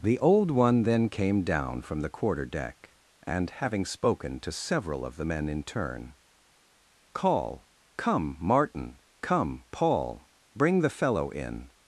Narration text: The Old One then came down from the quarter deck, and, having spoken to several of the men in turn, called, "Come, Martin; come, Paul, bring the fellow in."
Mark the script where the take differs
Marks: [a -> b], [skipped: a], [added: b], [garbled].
The Old One then came down from the quarter deck, and, having spoken to several of the men in turn, [called, -> call] "Come, Martin; come, Paul, bring the fellow in."